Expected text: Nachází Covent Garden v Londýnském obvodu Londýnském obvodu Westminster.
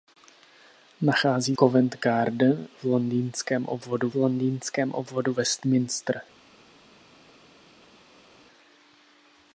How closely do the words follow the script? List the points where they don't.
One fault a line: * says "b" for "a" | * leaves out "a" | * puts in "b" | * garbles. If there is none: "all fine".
all fine